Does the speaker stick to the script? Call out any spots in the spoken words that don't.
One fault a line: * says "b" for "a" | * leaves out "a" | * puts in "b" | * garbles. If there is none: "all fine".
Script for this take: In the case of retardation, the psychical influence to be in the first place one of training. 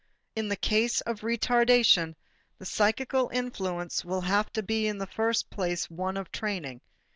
* puts in "will have"